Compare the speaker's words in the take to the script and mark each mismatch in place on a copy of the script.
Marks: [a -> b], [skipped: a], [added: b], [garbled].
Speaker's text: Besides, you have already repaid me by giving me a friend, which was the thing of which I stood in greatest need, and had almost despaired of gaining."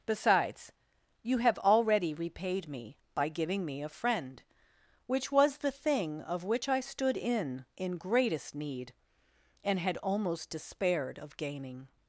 Besides, you have already repaid me by giving me a friend, which was the thing of which I stood in [added: in] greatest need, and had almost despaired of gaining."